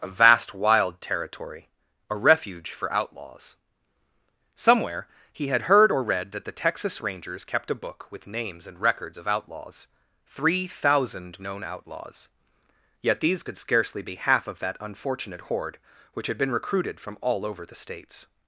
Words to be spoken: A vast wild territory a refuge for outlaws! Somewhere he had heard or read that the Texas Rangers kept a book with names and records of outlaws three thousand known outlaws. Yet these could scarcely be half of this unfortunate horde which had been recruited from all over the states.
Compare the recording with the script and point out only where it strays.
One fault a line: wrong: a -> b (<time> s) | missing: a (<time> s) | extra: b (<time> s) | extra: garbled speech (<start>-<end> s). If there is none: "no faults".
wrong: this -> that (14.6 s)